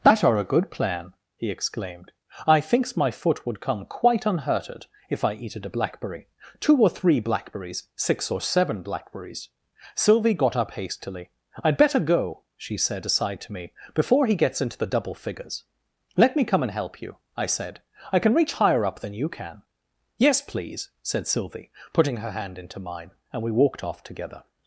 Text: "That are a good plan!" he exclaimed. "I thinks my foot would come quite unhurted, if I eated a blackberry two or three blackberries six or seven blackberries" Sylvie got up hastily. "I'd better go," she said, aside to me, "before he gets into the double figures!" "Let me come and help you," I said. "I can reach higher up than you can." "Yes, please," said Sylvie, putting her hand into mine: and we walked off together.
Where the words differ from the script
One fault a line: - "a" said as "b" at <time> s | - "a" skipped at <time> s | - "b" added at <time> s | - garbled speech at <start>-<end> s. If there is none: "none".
none